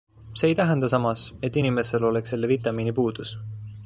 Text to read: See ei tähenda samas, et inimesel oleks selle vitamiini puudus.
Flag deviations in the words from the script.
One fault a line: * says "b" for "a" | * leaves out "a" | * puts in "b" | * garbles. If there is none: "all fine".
all fine